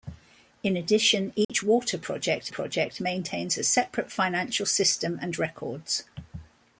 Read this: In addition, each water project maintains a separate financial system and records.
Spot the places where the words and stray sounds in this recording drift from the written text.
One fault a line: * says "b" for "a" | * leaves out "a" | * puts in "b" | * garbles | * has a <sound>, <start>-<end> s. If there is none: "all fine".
* has a dropout, 1.4-1.5 s
* puts in "project"